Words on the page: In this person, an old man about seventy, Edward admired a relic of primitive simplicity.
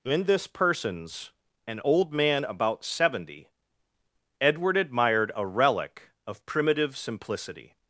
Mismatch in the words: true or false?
true